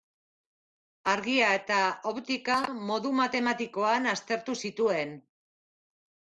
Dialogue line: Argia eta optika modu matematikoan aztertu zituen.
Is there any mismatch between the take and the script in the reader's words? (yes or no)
no